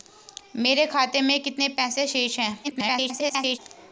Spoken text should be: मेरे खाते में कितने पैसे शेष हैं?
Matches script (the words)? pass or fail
fail